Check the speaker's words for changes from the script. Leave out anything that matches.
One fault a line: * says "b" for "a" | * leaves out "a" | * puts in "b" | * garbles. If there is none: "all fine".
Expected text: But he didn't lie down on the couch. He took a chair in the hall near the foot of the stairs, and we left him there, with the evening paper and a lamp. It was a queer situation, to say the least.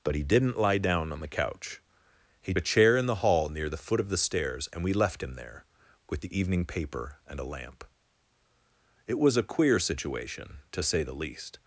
* leaves out "took"